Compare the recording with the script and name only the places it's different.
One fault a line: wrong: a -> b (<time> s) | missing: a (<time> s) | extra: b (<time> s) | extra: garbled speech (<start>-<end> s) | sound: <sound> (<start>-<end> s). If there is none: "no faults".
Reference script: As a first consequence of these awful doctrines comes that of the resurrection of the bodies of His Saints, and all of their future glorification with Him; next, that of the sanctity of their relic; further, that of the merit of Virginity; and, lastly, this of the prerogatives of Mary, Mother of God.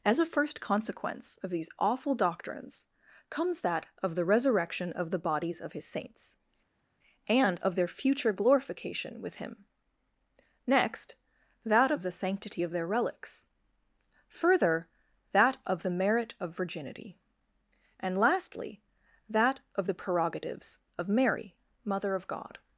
missing: all (7.6 s)
wrong: relic -> relics (12.9 s)
wrong: this -> that (19.3 s)